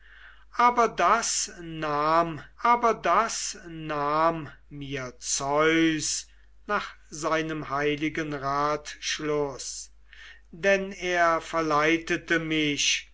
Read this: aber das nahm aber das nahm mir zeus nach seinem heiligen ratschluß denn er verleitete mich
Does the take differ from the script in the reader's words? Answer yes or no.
no